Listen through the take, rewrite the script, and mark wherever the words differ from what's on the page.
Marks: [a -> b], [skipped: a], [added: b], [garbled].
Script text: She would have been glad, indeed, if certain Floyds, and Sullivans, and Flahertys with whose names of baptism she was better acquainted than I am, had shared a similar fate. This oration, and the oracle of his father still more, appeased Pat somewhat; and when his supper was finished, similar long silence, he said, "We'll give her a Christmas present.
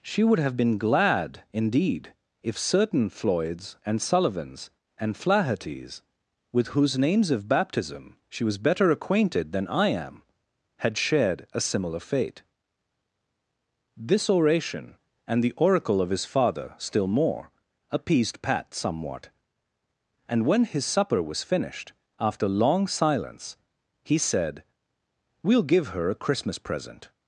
She would have been glad, indeed, if certain Floyds, and Sullivans, and Flahertys with whose names of baptism she was better acquainted than I am, had shared a similar fate. This oration, and the oracle of his father still more, appeased Pat somewhat; and when his supper was finished, [similar -> after] long silence, he said, "We'll give her a Christmas present.